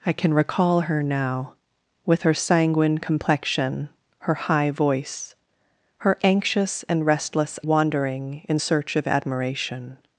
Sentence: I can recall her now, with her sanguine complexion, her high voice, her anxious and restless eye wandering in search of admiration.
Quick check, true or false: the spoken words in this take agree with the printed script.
false